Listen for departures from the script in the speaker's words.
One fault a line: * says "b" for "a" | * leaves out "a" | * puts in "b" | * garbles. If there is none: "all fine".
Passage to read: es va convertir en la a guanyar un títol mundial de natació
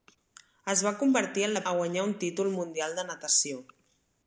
all fine